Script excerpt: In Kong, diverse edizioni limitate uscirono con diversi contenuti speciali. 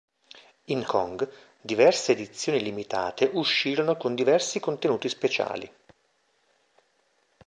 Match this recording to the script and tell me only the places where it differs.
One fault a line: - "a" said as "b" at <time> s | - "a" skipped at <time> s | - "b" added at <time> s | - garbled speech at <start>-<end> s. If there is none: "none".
none